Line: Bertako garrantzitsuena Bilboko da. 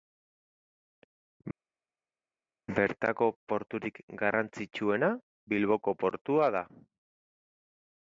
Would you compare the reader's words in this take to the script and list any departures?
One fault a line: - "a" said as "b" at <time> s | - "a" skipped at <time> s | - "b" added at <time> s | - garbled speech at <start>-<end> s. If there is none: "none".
- "porturik" added at 3.5 s
- "portua" added at 6.0 s